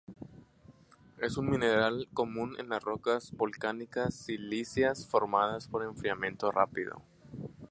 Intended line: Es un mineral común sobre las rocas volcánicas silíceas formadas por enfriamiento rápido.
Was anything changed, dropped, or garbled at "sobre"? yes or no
yes